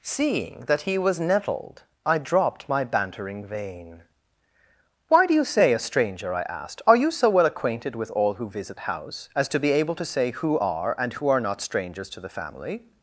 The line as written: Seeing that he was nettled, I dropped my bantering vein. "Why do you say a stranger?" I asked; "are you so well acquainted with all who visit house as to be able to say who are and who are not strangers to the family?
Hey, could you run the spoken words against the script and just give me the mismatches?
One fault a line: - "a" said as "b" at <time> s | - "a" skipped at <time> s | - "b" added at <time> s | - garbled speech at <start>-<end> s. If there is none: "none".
none